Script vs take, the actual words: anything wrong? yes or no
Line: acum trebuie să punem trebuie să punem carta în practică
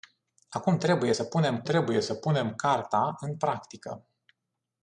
no